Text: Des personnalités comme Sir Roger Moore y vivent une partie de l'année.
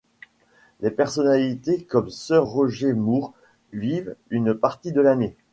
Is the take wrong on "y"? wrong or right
wrong